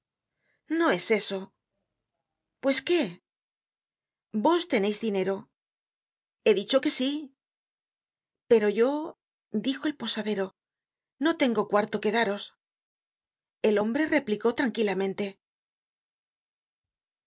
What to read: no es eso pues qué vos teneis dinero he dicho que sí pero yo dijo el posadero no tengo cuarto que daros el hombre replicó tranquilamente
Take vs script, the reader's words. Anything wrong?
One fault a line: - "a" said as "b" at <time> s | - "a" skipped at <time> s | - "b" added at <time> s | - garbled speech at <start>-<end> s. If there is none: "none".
none